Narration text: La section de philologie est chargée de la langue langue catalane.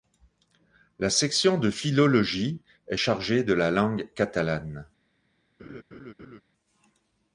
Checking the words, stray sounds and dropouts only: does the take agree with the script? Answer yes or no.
no